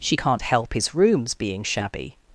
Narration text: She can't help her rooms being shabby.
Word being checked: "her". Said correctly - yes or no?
no